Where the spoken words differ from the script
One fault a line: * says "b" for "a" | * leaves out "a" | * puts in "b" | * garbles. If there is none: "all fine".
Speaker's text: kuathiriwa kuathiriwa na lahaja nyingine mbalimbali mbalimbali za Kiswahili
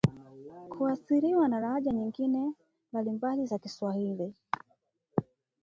* leaves out "kuathiriwa"
* leaves out "mbalimbali"